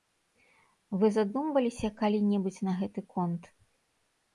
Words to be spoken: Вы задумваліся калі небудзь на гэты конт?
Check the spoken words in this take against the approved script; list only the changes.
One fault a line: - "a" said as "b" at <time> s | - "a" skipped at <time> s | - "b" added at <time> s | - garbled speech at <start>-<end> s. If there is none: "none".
none